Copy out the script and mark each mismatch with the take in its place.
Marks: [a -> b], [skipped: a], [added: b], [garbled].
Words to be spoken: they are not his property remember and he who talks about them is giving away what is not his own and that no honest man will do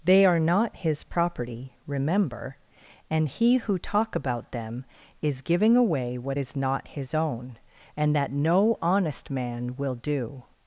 they are not his property remember and he who [talks -> talk] about them is giving away what is not his own and that no honest man will do